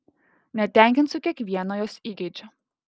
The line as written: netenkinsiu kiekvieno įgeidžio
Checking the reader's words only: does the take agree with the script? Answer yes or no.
no